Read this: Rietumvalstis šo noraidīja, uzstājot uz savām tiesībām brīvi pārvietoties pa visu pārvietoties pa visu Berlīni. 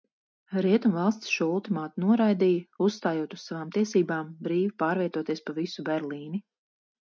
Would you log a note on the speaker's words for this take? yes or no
yes